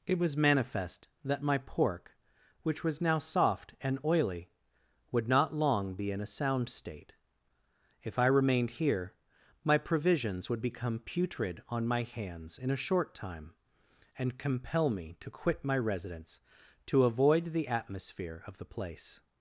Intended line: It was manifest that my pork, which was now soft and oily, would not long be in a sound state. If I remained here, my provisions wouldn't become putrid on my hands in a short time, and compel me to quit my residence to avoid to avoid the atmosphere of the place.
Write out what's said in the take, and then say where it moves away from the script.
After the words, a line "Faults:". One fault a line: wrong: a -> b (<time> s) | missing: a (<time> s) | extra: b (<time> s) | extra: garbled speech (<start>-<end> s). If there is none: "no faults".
It was manifest that my pork, which was now soft and oily, would not long be in a sound state. If I remained here, my provisions would become putrid on my hands in a short time, and compel me to quit my residence to avoid the atmosphere of the place.
Faults:
wrong: wouldn't -> would (10.5 s)
missing: to avoid (17.5 s)